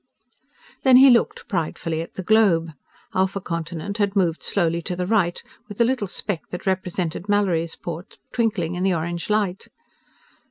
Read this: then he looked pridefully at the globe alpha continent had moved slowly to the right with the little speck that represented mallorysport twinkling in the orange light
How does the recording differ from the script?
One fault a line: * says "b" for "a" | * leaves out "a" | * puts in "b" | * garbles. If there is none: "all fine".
all fine